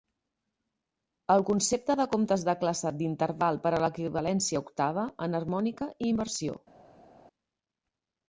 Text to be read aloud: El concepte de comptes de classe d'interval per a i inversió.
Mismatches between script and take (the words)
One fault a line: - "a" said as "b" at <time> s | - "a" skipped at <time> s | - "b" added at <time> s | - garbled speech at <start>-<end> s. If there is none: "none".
- "l'equivalència octava enharmònica" added at 3.9 s